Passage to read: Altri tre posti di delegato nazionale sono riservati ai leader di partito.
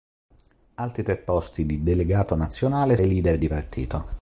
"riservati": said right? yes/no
no